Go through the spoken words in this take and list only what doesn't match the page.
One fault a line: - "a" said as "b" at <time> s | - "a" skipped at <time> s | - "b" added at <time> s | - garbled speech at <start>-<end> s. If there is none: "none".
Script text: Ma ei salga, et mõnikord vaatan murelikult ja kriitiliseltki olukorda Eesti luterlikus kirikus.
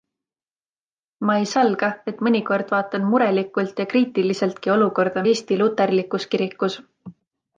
none